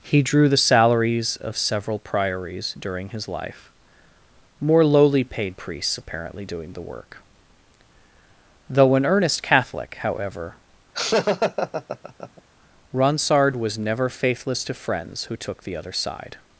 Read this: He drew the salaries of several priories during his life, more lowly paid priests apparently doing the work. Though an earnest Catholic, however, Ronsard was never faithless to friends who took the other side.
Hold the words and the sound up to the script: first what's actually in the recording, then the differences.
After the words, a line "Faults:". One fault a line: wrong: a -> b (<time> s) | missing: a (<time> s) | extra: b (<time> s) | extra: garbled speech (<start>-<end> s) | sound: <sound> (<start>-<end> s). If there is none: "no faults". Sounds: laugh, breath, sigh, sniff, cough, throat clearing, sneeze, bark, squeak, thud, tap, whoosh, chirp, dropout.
He drew the salaries of several priories during his life, more lowly paid priests apparently doing the work. Though an earnest Catholic, however, Ronsard was never faithless to friends who took the other side.
Faults:
sound: laugh (10.9-12.4 s)